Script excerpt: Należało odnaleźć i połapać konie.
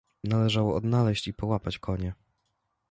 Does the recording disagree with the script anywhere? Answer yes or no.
no